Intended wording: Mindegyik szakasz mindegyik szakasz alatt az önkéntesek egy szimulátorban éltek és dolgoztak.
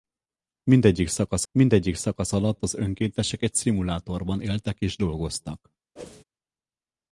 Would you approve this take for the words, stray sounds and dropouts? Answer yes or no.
no